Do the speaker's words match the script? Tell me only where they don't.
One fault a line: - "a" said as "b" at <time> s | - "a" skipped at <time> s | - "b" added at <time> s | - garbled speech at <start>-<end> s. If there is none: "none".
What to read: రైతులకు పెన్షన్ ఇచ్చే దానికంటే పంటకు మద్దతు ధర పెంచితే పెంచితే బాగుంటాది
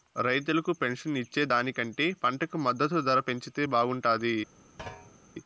- "పెంచితే" skipped at 3.6 s